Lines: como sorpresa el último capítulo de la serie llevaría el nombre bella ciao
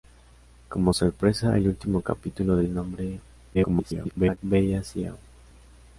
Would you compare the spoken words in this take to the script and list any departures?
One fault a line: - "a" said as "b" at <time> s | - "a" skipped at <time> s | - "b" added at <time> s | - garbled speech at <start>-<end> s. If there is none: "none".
- "la serie llevaría" skipped at 2.6 s
- garbled speech at 3.5-4.4 s